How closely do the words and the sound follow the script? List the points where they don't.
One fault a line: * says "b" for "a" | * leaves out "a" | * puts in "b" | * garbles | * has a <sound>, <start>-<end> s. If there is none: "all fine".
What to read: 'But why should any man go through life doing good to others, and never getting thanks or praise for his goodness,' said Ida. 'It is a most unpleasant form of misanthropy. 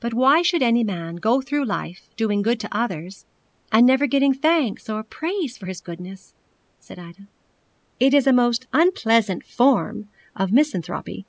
all fine